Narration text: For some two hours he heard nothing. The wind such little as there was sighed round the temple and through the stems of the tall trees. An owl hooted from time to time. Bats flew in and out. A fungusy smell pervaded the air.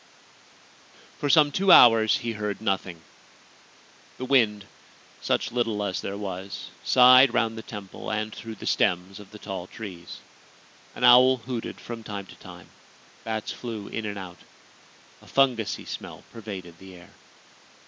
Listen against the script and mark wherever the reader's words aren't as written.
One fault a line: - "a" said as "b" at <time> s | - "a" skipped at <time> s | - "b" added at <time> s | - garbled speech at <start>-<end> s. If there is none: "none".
none